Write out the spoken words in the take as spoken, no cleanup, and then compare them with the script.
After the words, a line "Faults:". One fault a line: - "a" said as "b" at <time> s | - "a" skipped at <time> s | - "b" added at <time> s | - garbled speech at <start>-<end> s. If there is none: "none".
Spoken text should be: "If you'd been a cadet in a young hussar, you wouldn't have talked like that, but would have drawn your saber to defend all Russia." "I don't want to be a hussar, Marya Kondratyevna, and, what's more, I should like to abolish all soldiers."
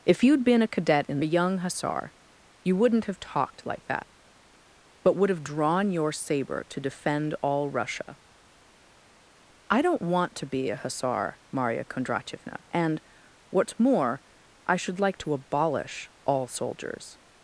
"If you'd been a cadet in a young hussar, you wouldn't have talked like that, but would have drawn your saber to defend all Russia." "I don't want to be a hussar, Marya Kondratyevna, and, what's more, I should like to abolish all soldiers."
Faults:
none